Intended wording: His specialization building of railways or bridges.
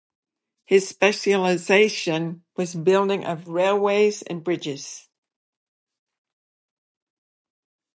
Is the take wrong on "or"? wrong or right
wrong